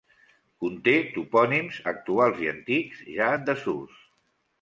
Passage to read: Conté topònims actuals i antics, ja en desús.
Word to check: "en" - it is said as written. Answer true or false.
true